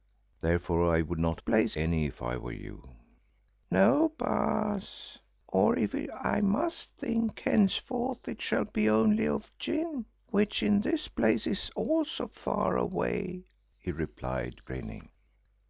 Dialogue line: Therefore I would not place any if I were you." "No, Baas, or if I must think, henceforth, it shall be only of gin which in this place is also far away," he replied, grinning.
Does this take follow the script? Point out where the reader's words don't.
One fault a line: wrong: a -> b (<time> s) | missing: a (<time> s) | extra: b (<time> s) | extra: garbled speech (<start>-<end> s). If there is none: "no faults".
no faults